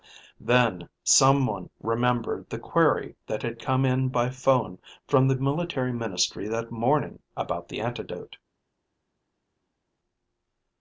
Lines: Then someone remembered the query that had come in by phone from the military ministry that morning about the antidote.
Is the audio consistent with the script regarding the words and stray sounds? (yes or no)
yes